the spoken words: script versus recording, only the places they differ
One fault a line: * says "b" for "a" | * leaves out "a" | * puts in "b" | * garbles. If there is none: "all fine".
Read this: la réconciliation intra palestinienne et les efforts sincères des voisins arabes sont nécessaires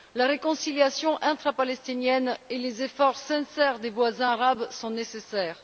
all fine